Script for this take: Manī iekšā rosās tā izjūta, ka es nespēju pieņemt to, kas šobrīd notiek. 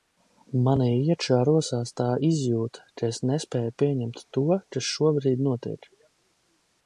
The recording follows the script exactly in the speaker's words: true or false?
true